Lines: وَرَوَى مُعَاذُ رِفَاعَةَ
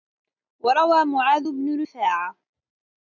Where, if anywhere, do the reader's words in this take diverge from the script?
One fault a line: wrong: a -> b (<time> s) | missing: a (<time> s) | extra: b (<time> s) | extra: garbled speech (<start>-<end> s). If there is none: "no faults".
extra: بْنُ (1.5 s)